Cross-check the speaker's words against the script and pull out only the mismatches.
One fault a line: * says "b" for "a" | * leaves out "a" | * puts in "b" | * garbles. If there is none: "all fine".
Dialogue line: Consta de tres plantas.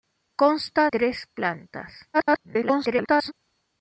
* leaves out "de"
* garbles